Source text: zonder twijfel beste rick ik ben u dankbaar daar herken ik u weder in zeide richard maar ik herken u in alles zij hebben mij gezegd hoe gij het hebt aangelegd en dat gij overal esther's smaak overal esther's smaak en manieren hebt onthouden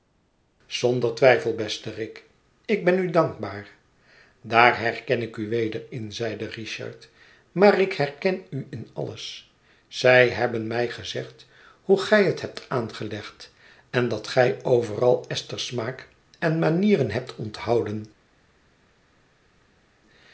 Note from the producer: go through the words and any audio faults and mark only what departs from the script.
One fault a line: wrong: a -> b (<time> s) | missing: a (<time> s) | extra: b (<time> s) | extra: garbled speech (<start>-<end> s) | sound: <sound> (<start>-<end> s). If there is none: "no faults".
missing: overal esther's smaak (16.1 s)